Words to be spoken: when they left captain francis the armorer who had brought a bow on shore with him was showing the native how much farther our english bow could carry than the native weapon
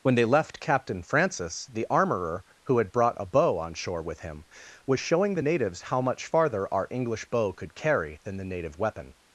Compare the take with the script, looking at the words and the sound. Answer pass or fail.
fail